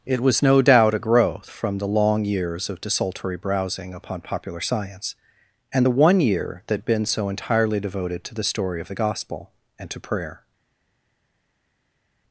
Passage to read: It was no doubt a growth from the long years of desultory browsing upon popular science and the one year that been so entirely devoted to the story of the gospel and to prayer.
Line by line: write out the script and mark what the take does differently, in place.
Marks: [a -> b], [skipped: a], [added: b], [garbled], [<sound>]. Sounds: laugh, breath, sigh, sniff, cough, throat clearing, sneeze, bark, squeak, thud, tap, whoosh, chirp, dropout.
It was no doubt a growth from the long years of desultory browsing upon popular science and the one year that been so entirely devoted to the story of the gospel and to prayer.